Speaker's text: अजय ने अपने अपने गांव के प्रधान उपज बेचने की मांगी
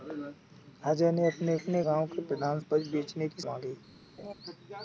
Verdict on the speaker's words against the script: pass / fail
pass